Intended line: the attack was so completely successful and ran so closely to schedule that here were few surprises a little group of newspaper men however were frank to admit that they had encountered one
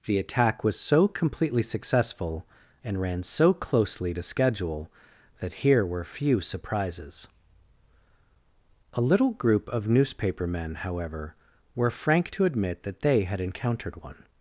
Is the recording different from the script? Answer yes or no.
no